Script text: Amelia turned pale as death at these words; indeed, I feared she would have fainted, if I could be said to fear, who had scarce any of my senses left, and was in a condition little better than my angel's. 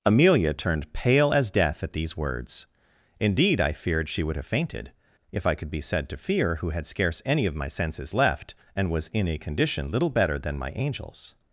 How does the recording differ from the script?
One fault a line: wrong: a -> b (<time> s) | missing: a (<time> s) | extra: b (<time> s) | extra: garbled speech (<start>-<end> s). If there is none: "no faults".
no faults